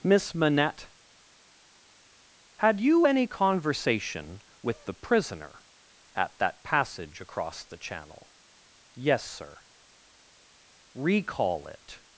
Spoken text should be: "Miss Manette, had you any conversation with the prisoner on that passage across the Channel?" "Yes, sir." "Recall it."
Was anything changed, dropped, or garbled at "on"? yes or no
yes